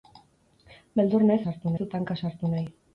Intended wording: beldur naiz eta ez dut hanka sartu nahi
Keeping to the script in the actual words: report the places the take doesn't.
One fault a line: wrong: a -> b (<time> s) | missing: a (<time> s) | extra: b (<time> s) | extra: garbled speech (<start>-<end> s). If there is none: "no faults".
wrong: eta -> sartu (1.5 s)